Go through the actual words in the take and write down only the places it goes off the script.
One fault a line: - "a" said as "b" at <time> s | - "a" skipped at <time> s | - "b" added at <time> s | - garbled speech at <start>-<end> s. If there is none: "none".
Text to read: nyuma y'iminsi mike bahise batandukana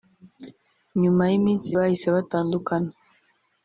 - "mike" skipped at 1.7 s